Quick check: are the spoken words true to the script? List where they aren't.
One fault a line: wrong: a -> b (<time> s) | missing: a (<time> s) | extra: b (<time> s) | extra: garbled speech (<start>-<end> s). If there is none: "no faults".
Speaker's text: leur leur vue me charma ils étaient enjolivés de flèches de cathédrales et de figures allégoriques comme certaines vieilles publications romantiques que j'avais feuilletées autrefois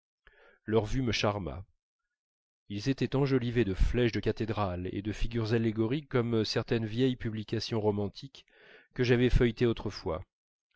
missing: leur (0.8 s)